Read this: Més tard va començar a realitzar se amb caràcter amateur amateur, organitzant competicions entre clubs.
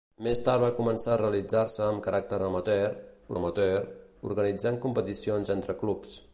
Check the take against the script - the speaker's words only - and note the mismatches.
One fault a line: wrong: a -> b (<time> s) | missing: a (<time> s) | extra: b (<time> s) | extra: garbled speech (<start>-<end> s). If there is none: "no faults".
no faults